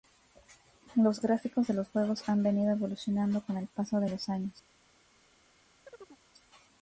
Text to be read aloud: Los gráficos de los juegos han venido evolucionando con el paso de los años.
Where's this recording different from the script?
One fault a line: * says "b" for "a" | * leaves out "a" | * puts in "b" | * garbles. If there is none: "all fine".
all fine